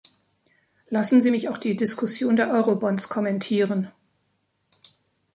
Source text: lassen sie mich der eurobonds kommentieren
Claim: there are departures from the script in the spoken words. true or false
true